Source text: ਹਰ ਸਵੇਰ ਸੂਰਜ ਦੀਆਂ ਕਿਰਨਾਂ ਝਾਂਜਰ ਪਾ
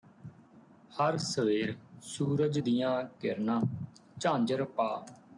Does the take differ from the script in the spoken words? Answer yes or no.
no